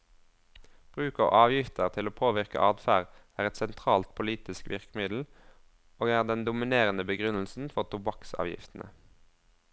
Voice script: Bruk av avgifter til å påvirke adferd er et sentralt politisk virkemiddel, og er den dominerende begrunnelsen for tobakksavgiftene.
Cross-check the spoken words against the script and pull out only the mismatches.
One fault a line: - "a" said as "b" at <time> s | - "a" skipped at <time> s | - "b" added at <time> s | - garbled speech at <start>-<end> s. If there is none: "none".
none